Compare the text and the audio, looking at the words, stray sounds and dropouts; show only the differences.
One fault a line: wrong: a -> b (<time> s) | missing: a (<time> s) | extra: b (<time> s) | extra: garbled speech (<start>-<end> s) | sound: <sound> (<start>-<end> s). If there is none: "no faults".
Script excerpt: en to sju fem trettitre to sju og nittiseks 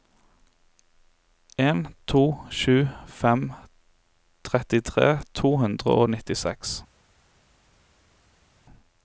wrong: sju -> hundre (5.6 s)